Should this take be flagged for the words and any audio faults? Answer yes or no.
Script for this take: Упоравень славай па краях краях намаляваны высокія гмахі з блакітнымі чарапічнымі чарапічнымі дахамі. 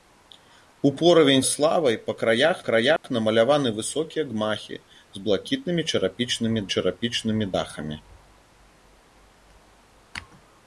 yes